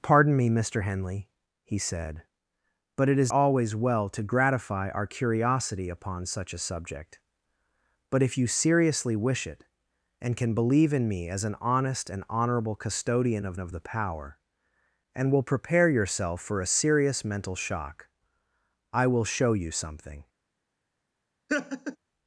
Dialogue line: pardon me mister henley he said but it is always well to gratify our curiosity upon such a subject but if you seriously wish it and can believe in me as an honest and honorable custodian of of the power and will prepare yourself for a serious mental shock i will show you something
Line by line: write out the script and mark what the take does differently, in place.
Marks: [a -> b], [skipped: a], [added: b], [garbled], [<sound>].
pardon me mister henley he said but it is always well to gratify our curiosity upon such a subject but if you seriously wish it and can believe in me as an honest and honorable custodian of of the power and will prepare yourself for a serious mental shock i will show you something [laugh]